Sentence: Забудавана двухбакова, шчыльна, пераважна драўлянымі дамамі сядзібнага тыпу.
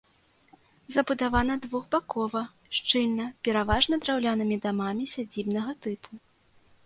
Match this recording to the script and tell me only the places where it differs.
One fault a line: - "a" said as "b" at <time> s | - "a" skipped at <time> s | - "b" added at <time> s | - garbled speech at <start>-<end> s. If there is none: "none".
none